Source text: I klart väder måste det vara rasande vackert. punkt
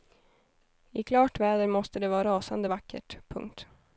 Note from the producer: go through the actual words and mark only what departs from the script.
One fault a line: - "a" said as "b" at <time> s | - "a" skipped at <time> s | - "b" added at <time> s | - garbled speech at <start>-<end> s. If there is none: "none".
none